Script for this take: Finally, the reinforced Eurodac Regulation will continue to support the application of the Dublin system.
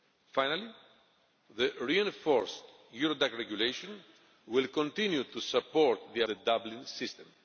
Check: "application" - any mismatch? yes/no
yes